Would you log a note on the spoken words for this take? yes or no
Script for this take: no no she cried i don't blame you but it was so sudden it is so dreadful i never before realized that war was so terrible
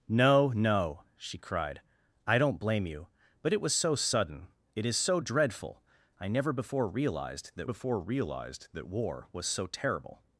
yes